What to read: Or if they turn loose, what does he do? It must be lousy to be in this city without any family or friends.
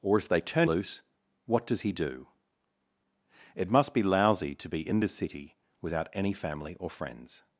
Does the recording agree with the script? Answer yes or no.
yes